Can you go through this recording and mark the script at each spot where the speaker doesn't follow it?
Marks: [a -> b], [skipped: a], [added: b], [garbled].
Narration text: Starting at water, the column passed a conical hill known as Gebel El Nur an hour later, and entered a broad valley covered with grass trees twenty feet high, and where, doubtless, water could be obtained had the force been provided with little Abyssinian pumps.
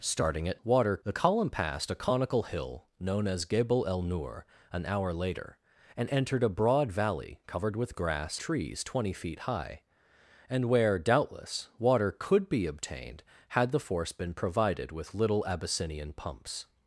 Starting at water, the column passed a conical hill known as Gebel El Nur an hour later, and entered a broad valley covered with grass trees twenty feet high, and where, doubtless, water could be obtained had the force been provided with little Abyssinian pumps.